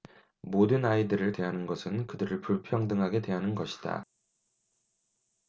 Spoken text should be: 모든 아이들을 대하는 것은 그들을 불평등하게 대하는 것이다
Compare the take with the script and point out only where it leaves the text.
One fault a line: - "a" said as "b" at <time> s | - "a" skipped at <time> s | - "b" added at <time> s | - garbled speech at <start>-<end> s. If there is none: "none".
none